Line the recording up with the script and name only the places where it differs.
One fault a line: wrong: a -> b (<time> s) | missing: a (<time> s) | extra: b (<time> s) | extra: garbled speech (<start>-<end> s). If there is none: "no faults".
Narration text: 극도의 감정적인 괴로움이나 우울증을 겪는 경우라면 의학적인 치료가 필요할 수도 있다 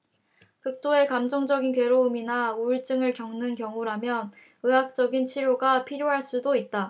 no faults